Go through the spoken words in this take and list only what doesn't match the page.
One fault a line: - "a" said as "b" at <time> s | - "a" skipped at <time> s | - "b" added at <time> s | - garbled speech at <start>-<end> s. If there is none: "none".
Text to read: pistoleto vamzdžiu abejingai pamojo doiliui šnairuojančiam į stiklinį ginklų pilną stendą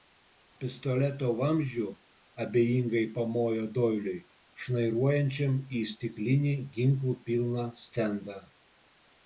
none